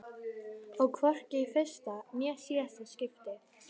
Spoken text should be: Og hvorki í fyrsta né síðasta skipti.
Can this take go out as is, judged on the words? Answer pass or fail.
pass